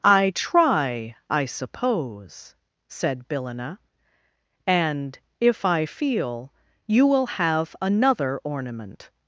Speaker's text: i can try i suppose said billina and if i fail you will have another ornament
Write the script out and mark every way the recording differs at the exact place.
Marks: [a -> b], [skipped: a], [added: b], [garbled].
i [skipped: can] try i suppose said billina and if i [fail -> feel] you will have another ornament